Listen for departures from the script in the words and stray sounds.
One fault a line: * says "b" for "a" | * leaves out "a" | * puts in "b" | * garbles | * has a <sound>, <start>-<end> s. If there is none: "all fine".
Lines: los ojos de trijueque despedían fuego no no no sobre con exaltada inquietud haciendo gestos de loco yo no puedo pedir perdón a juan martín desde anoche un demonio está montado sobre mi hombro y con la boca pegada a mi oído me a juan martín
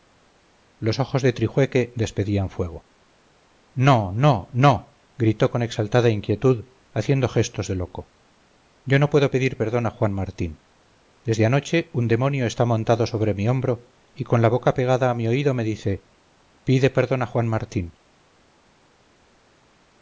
* says "gritó" for "sobre"
* puts in "dice pide perdón"